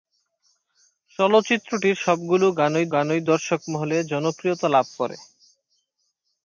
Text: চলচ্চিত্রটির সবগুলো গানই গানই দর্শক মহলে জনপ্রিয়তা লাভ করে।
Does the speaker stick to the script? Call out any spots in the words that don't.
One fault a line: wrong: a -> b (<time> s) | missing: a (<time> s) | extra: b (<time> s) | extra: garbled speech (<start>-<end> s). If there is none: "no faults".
no faults